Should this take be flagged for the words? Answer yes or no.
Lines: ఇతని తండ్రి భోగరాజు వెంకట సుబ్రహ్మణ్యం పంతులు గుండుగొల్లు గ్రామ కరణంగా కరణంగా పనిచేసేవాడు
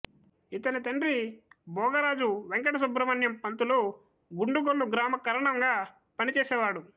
yes